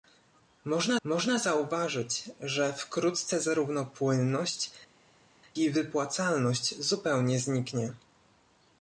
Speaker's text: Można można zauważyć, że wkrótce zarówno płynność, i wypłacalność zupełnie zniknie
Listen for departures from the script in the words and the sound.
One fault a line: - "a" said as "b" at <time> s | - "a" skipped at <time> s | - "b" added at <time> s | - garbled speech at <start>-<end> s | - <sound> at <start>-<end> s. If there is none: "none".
none